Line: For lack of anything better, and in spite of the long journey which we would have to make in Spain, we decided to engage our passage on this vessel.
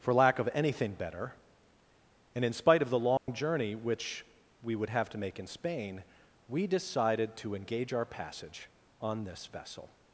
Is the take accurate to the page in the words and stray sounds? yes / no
no